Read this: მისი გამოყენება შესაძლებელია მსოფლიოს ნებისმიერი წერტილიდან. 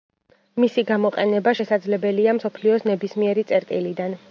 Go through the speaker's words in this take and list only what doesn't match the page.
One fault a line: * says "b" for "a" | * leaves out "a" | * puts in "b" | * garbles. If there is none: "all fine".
all fine